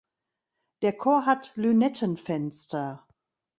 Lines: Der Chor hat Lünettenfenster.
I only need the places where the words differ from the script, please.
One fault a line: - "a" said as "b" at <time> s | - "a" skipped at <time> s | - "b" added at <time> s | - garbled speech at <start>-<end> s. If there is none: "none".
none